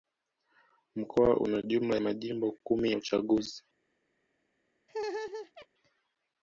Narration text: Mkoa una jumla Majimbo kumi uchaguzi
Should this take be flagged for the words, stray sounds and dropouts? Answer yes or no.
yes